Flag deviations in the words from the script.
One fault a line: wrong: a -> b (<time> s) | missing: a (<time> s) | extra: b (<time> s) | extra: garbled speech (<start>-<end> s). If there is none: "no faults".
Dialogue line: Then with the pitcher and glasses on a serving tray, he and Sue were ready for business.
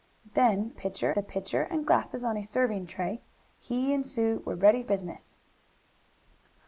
wrong: with -> pitcher (0.7 s)
missing: for (4.8 s)